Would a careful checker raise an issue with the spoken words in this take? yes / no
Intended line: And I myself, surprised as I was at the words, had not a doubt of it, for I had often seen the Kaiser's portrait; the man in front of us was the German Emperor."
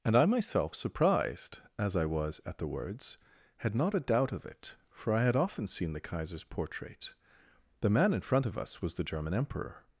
no